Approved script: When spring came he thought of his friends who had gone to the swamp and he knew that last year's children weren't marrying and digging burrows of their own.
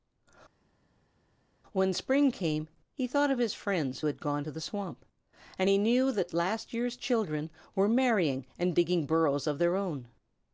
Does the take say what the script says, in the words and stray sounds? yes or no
no